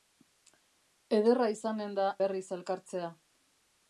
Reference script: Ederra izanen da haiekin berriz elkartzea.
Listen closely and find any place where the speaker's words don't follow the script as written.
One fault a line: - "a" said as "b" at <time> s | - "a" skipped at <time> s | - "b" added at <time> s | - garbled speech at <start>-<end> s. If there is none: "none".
- "haiekin" skipped at 2.1 s